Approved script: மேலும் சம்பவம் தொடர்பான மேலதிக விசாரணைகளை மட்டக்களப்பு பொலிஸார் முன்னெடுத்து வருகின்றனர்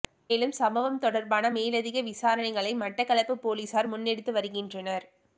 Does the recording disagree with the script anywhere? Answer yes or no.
no